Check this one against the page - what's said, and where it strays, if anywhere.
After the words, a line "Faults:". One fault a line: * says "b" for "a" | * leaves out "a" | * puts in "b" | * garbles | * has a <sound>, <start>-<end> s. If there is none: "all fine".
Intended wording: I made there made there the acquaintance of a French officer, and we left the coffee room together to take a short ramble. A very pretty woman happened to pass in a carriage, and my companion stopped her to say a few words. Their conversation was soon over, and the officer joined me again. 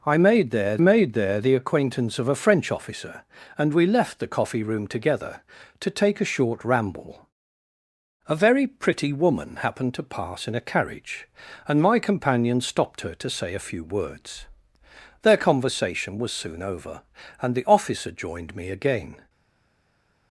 I made there made there the acquaintance of a French officer, and we left the coffee room together to take a short ramble. A very pretty woman happened to pass in a carriage, and my companion stopped her to say a few words. Their conversation was soon over, and the officer joined me again.
Faults:
all fine